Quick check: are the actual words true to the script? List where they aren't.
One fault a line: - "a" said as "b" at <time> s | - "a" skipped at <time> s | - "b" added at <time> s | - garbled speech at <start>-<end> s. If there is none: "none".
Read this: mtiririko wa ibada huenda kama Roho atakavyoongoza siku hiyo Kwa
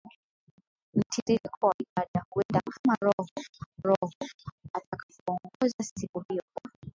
- "Roho" added at 3.8 s